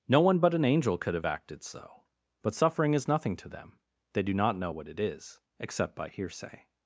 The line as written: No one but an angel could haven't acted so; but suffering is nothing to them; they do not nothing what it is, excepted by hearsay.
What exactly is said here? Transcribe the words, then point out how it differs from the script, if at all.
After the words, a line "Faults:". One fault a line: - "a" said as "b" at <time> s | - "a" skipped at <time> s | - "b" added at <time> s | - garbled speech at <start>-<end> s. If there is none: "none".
No one but an angel could have acted so; but suffering is nothing to them; they do not know what it is, except by hearsay.
Faults:
- "haven't" said as "have" at 1.1 s
- "nothing" said as "know" at 4.6 s
- "excepted" said as "except" at 5.6 s